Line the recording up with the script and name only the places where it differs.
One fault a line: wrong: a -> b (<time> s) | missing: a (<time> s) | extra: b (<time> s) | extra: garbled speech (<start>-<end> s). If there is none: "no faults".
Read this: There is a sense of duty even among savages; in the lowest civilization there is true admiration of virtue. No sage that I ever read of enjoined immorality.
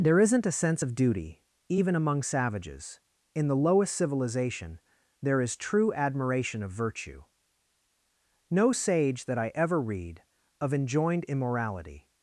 wrong: is -> isn't (0.2 s)